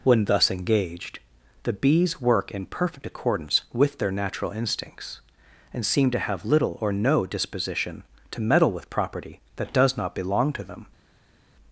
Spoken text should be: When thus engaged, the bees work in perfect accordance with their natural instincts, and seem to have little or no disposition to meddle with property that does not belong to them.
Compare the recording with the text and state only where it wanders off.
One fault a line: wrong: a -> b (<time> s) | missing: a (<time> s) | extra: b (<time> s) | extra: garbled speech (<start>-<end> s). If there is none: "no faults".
no faults